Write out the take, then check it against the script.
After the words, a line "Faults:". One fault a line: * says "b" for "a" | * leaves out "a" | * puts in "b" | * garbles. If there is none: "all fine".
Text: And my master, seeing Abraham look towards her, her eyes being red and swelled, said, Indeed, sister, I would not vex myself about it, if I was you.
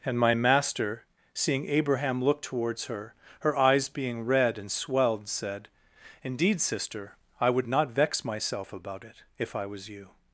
And my master, seeing Abraham look towards her, her eyes being red and swelled, said, Indeed, sister, I would not vex myself about it, if I was you.
Faults:
all fine